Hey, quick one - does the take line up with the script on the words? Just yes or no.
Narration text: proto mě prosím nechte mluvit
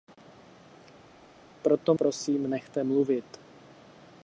no